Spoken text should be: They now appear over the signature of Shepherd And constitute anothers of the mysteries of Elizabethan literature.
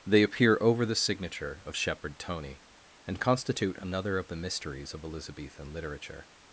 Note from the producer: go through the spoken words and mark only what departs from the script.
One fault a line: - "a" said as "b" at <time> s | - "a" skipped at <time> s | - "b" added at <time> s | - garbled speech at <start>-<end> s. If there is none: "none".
- "now" skipped at 0.2 s
- "Tony" added at 2.2 s
- "anothers" said as "another" at 3.8 s